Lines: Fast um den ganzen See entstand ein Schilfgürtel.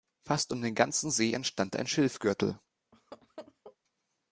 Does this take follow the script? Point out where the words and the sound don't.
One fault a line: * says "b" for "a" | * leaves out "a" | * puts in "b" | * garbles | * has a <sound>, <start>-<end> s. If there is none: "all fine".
* has a laugh, 2.9-3.8 s